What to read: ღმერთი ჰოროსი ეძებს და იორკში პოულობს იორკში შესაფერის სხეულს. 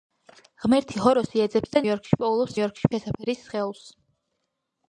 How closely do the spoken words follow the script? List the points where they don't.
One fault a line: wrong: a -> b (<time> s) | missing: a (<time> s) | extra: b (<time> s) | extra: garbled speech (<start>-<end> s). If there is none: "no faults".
no faults